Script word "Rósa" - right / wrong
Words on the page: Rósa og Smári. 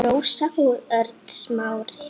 right